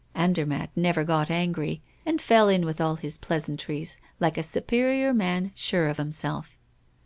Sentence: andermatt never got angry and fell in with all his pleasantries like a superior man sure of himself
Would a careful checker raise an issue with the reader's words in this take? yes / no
no